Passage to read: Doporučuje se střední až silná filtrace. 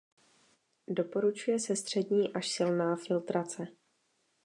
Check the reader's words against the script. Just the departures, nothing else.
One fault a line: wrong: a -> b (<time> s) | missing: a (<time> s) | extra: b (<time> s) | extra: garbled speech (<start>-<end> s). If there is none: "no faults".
no faults